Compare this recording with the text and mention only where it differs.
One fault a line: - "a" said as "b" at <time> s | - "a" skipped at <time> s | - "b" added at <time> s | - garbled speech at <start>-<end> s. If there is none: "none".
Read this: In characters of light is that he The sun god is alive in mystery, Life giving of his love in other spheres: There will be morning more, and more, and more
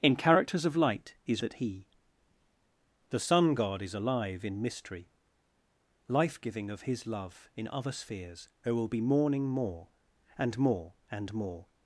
none